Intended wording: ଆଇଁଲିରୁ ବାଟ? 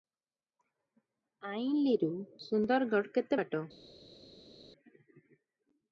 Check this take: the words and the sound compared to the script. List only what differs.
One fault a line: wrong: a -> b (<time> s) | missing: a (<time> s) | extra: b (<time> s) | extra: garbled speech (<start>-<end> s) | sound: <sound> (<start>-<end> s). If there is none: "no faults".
extra: ସୁନ୍ଦରଗଡ଼ କେତେ (2.5 s)